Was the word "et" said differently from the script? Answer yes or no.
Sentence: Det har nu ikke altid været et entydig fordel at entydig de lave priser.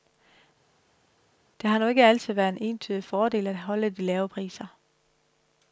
yes